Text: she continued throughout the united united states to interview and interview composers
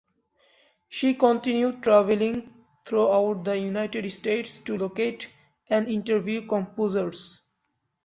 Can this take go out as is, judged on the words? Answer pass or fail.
fail